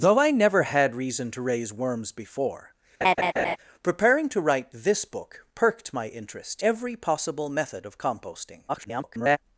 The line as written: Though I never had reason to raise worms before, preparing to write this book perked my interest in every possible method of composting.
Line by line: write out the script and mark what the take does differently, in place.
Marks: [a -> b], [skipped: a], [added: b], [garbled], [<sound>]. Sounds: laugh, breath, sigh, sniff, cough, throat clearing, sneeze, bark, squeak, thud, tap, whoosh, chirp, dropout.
Though I never had reason to raise worms before, [laugh] preparing to write this book perked my interest [skipped: in] every possible method of composting. [garbled]